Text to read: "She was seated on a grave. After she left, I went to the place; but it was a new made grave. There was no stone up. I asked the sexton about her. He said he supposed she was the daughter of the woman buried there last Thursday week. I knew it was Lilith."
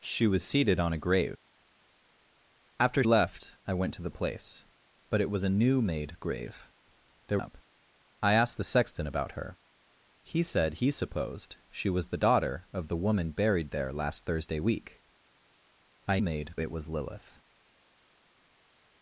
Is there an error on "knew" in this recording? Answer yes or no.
yes